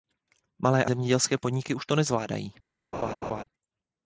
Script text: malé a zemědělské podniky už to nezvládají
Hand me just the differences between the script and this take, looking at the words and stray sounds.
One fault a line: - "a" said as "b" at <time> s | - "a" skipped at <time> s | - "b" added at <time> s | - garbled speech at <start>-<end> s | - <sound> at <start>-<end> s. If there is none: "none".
- laugh at 2.9-3.4 s